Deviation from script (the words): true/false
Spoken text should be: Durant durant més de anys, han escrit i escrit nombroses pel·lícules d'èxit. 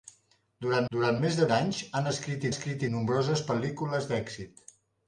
false